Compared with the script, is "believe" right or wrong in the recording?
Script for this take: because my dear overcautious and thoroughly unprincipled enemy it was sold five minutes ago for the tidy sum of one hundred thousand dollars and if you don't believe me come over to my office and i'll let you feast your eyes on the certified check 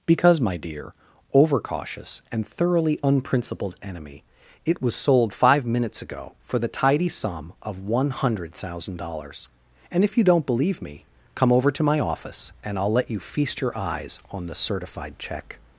right